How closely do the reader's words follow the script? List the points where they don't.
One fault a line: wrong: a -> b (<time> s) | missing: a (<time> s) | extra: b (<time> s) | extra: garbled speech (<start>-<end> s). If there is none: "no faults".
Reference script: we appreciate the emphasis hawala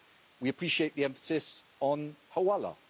extra: on (1.8 s)